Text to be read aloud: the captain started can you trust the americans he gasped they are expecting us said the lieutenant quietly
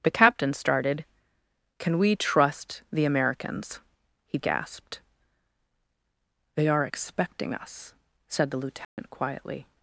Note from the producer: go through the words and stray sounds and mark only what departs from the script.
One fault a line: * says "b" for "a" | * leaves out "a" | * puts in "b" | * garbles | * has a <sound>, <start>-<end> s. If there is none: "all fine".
* says "we" for "you"
* has a dropout, 8.8-9.0 s